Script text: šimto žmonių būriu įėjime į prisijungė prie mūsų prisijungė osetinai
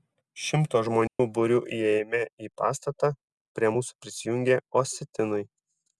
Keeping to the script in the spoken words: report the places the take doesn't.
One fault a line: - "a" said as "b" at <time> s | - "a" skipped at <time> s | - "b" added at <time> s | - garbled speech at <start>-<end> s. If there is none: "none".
- "prisijungė" said as "pastatą" at 2.6 s